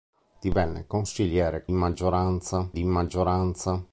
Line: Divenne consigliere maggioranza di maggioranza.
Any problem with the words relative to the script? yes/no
no